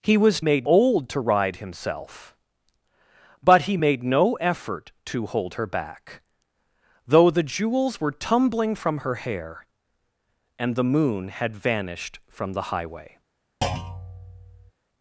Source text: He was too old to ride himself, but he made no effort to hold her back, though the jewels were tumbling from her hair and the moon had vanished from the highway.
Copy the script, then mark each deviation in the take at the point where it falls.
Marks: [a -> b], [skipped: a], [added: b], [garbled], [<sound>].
He was [too -> made] old to ride himself, but he made no effort to hold her back, though the jewels were tumbling from her hair and the moon had vanished from the highway. [thud]